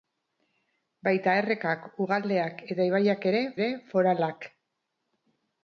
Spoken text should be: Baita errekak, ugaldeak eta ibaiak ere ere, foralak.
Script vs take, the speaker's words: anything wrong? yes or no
no